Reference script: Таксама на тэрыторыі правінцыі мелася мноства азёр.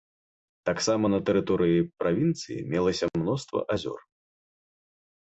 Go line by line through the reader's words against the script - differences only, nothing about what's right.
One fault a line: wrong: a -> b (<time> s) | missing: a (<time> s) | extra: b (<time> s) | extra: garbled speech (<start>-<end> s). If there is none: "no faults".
no faults